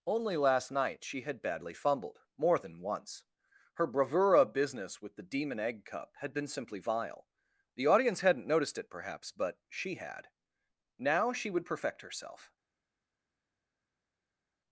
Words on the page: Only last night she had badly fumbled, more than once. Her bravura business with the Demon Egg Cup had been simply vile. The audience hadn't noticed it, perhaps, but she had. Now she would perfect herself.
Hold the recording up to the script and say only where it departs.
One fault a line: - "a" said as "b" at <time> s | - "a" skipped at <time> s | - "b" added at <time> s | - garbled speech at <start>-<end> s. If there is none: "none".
none